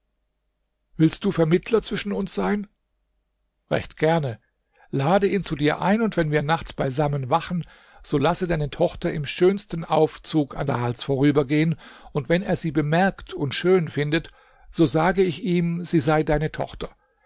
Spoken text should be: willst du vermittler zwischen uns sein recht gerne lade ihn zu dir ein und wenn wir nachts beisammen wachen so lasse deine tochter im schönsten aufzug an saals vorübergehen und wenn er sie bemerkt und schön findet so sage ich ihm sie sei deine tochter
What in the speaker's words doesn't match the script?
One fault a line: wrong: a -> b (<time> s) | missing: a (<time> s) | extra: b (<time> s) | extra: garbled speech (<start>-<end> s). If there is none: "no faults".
no faults